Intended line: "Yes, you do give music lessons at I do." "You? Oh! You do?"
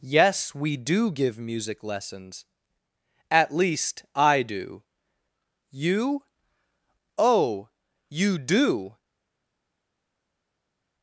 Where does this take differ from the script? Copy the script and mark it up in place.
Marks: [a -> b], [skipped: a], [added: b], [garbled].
"Yes, [you -> we] do give music lessons at [added: least] I do." "You? Oh! You do?"